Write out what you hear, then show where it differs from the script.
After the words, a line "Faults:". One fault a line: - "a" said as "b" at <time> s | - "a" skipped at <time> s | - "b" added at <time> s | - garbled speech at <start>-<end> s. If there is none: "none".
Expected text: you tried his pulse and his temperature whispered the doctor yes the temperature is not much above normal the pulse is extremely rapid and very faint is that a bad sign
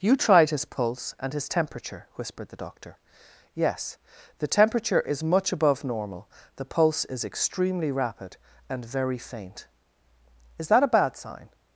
you tried his pulse and his temperature whispered the doctor yes the temperature is much above normal the pulse is extremely rapid and very faint is that a bad sign
Faults:
- "not" skipped at 5.2 s